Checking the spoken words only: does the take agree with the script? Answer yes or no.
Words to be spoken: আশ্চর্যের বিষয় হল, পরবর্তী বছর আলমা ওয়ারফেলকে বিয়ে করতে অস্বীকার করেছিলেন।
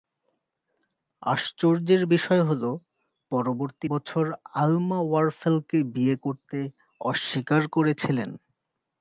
yes